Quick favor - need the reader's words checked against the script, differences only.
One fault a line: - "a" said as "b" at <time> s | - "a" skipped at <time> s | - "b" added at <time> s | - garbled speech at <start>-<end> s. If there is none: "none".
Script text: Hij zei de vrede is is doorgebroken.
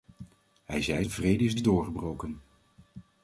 none